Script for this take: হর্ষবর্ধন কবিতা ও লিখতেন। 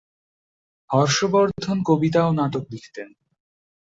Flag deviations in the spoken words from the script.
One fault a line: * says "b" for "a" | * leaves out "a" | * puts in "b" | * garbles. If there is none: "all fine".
* puts in "নাটক"